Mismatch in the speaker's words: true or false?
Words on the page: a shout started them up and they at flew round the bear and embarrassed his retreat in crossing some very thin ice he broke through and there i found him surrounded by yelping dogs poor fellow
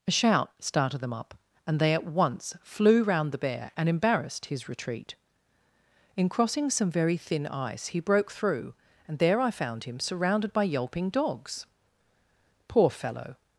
true